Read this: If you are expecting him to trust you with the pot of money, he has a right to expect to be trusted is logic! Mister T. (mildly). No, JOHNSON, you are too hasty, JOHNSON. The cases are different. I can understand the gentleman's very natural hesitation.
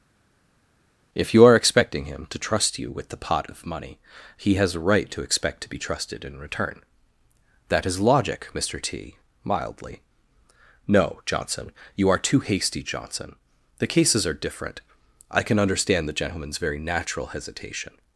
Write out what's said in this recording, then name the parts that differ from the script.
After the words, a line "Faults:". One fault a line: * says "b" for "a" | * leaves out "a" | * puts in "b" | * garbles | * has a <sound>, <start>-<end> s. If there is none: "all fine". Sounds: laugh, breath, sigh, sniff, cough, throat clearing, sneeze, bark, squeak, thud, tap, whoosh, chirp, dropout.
If you are expecting him to trust you with the pot of money, he has a right to expect to be trusted in return. That is logic! Mister T. (mildly). No, JOHNSON, you are too hasty, JOHNSON. The cases are different. I can understand the gentleman's very natural hesitation.
Faults:
* puts in "in return That"